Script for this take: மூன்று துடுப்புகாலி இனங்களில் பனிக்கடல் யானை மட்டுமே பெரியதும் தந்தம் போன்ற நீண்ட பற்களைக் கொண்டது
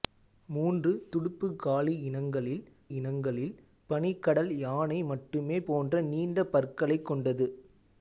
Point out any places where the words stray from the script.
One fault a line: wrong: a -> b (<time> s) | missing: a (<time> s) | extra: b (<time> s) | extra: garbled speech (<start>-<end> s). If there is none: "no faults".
extra: இனங்களில் (2.9 s)
missing: பெரியதும் தந்தம் (5.6 s)